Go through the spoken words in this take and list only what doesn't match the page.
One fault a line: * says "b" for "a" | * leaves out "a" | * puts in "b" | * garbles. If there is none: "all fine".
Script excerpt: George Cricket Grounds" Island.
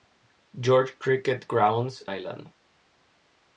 all fine